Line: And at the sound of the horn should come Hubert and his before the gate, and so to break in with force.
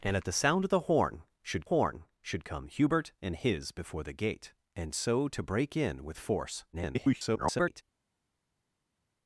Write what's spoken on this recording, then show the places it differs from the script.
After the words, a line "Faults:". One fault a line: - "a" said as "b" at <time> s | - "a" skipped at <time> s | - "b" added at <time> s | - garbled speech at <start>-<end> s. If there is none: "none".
And at the sound of the horn should horn should come Hubert and his before the gate, and so to break in with force. [garbled]
Faults:
- "horn should" added at 1.6 s
- garbled speech at 6.7-7.8 s